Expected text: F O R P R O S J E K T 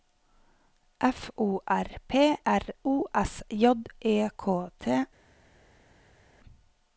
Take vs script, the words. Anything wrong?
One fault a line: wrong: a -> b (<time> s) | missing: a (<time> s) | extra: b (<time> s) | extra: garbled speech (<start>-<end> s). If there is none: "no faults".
no faults